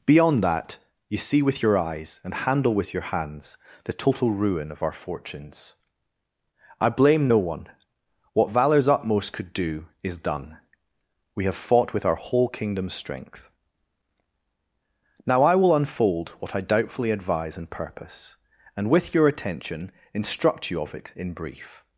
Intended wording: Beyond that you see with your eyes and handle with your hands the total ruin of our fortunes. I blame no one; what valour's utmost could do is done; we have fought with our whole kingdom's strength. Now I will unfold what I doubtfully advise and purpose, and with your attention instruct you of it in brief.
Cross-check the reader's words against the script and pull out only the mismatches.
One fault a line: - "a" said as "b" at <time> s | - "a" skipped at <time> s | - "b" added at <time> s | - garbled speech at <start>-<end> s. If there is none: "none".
none